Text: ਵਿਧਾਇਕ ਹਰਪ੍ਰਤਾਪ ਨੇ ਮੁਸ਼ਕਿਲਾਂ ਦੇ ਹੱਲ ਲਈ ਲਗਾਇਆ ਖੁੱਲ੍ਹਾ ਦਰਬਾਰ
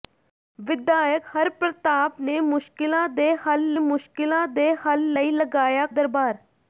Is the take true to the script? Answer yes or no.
no